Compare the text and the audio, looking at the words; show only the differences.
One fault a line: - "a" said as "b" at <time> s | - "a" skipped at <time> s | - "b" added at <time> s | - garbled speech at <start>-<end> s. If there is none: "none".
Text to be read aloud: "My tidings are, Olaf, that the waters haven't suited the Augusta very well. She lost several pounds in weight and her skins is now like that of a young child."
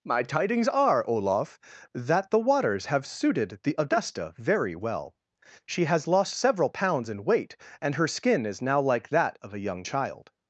- "haven't" said as "have" at 2.9 s
- "has" added at 5.8 s
- "skins" said as "skin" at 8.1 s